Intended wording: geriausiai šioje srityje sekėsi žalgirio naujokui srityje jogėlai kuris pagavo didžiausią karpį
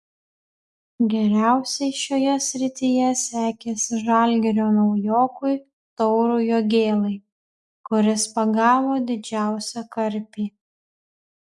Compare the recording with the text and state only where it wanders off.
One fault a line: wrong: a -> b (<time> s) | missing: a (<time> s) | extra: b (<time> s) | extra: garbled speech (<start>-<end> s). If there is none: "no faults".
wrong: srityje -> taurui (6.0 s)